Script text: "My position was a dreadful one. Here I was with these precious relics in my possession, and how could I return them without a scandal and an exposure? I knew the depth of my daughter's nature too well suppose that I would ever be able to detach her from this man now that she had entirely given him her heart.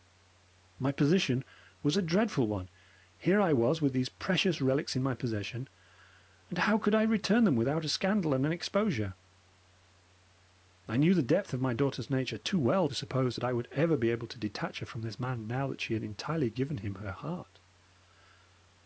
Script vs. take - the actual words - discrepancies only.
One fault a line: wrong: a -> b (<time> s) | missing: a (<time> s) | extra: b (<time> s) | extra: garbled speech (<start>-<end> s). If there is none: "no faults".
no faults